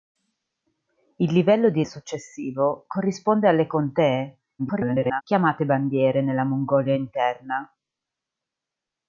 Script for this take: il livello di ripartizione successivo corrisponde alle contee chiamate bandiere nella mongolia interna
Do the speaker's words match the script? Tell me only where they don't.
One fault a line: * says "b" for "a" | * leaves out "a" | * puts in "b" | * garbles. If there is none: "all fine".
* leaves out "ripartizione"
* garbles